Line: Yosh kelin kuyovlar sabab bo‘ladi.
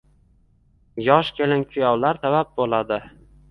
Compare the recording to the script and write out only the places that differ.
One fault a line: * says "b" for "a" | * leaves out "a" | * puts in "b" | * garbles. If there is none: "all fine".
all fine